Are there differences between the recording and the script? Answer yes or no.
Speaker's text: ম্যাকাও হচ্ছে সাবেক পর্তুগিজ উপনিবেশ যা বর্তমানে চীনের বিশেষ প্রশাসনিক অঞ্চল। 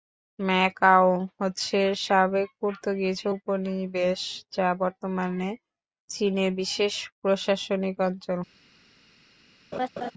no